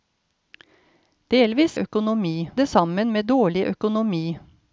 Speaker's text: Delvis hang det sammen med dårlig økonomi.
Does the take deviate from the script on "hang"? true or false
true